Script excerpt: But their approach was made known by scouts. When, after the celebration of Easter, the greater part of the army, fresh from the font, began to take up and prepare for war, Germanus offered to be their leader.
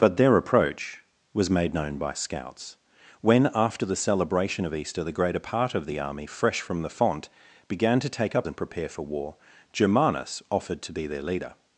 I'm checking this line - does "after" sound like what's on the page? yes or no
yes